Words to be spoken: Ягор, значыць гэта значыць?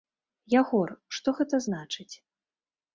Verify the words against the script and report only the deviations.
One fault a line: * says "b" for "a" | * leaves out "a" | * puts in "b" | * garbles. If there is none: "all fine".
* says "што" for "значыць"